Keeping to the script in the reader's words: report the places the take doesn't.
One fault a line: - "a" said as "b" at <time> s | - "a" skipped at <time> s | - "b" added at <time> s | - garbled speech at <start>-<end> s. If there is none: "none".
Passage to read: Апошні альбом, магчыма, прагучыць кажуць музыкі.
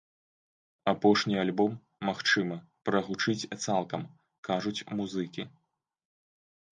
- "цалкам" added at 3.6 s